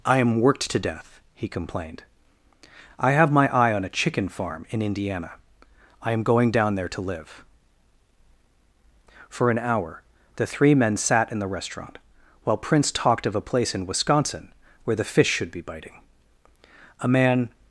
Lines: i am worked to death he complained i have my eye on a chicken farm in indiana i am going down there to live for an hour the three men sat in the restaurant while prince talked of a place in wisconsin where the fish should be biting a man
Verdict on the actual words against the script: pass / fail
pass